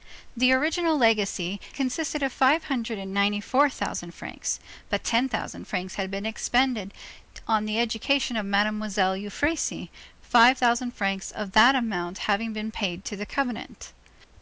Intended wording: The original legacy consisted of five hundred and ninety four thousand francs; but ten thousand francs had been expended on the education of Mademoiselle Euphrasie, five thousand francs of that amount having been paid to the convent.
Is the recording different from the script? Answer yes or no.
no